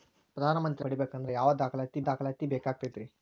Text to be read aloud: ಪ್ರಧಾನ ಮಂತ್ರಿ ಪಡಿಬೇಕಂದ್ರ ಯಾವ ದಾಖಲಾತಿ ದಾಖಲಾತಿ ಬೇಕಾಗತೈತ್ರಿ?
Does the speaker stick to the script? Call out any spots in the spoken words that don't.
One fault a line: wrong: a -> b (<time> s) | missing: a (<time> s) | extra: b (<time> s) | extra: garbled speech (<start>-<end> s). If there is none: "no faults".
no faults